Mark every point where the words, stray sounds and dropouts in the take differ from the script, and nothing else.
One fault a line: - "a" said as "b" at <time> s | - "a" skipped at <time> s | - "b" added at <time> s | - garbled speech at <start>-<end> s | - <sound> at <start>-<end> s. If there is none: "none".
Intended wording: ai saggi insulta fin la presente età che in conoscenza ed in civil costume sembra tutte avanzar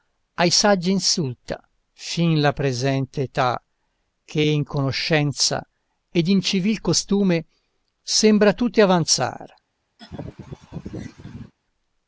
- laugh at 10.0-11.5 s